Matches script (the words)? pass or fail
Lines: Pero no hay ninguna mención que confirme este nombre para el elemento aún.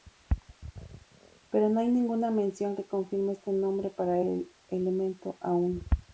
pass